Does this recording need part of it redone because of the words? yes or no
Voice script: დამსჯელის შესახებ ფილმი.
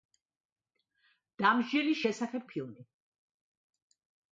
no